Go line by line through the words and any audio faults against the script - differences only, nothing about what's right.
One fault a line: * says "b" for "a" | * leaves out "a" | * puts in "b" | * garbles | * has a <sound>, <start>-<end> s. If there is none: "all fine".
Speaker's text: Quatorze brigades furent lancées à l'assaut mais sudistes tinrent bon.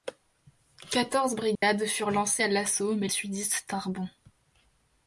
* has a dropout, 1.6-1.6 s